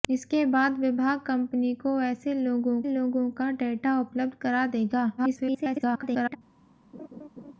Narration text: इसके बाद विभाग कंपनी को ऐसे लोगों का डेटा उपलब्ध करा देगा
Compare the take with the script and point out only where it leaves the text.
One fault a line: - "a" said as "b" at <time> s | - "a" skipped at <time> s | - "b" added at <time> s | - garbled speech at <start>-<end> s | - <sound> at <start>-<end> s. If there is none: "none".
- "लोगों" added at 2.8 s
- garbled speech at 5.2-6.4 s
- laugh at 6.9-7.5 s